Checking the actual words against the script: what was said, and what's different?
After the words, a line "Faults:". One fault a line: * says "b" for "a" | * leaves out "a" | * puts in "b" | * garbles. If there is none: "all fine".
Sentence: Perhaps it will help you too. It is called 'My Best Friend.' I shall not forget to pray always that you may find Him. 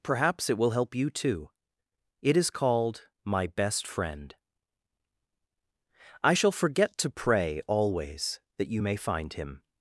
Perhaps it will help you too. It is called 'My Best Friend.' I shall forget to pray always that you may find Him.
Faults:
* leaves out "not"